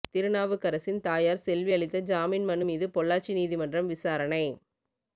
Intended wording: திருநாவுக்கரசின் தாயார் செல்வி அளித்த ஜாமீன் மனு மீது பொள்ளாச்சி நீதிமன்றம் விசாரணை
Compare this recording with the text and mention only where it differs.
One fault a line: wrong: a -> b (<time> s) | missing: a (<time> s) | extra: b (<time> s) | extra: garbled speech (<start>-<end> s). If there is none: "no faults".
no faults